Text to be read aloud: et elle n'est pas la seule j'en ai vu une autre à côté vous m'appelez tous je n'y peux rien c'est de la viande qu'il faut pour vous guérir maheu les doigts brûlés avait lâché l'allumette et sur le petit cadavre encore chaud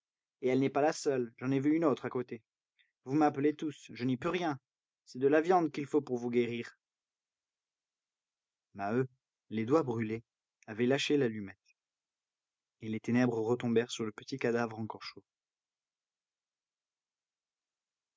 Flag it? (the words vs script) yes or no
yes